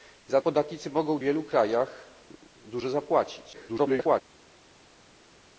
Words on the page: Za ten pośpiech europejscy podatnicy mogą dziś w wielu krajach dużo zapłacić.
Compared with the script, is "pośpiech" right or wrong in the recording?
wrong